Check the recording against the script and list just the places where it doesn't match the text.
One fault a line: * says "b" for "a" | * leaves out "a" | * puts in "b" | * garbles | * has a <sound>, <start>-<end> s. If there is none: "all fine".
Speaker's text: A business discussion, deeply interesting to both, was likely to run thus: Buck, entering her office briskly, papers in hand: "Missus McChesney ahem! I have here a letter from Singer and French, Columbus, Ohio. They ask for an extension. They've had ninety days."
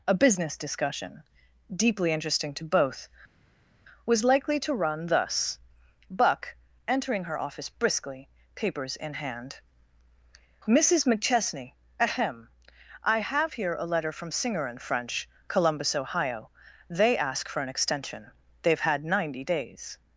all fine